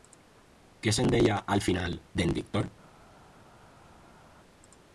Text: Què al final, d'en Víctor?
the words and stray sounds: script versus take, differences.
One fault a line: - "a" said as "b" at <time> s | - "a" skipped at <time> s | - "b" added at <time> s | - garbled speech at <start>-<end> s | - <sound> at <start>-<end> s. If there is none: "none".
- "se'n deia" added at 1.0 s